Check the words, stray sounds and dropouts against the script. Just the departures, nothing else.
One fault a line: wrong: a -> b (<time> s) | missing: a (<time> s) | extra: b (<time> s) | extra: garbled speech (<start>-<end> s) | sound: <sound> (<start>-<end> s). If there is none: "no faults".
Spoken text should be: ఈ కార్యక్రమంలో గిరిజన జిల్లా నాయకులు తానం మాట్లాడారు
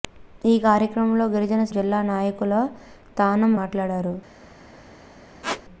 sound: squeak (5.4-5.6 s)